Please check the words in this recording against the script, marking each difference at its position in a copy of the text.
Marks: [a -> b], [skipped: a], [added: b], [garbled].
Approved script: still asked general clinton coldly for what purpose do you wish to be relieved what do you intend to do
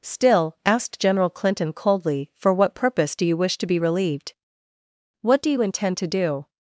still asked general clinton coldly for what purpose do you wish to be relieved what do you intend to do